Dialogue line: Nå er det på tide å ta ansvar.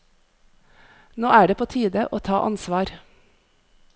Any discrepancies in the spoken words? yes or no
no